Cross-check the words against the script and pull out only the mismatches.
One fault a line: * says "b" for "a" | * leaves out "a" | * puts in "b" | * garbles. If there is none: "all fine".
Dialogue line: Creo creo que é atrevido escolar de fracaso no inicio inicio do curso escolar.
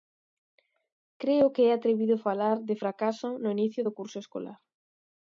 * leaves out "creo"
* says "falar" for "escolar"
* leaves out "inicio"